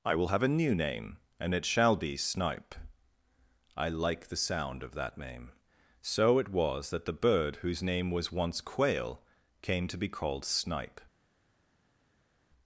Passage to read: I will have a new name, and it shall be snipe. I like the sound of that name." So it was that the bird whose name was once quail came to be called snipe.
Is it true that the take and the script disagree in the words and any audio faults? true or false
false